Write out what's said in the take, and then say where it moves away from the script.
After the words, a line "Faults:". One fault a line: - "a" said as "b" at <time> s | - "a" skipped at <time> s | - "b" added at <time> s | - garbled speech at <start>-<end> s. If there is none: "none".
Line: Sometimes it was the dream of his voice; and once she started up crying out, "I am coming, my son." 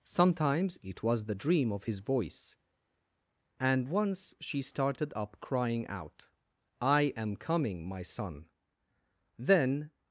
Sometimes it was the dream of his voice; and once she started up crying out, "I am coming, my son." Then
Faults:
- "Then" added at 9.4 s